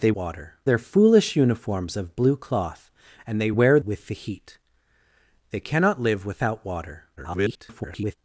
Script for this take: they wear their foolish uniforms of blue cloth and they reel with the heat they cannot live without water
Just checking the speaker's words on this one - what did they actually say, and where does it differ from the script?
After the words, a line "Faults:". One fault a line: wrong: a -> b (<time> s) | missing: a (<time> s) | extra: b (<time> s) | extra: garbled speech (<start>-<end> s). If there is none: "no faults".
they water their foolish uniforms of blue cloth and they wear with the heat they cannot live without water [garbled]
Faults:
wrong: wear -> water (0.2 s)
wrong: reel -> wear (3.5 s)
extra: garbled speech (7.2-8.2 s)